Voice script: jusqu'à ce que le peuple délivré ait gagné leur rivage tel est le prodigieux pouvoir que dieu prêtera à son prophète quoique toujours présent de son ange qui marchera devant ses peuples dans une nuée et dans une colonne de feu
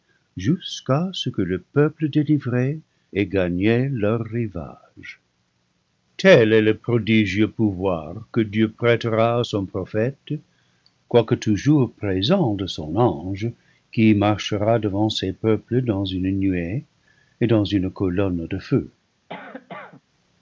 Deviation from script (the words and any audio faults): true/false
true